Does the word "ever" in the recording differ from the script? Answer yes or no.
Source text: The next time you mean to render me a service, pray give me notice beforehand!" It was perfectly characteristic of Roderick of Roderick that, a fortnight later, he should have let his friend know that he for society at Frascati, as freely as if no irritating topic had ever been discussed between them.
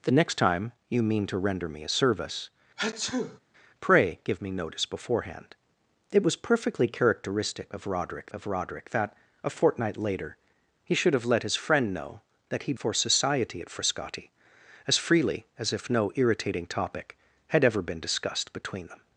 no